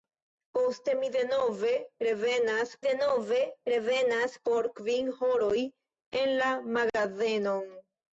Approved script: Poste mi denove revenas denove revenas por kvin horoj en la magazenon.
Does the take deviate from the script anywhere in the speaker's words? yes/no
no